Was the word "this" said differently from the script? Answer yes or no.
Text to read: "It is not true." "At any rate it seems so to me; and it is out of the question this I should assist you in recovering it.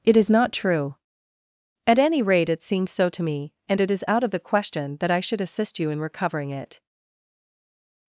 yes